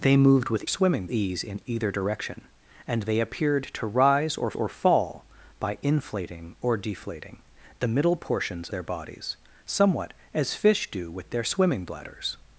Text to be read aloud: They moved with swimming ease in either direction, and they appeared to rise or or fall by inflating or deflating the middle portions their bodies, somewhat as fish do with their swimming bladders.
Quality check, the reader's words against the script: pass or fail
pass